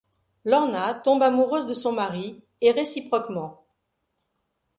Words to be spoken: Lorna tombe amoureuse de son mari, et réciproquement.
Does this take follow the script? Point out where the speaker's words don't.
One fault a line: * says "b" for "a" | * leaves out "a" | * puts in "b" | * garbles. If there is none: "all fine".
all fine